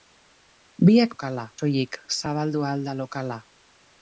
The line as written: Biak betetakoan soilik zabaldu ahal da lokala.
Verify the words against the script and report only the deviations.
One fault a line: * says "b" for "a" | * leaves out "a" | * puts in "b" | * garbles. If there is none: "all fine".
* says "lokala" for "betetakoan"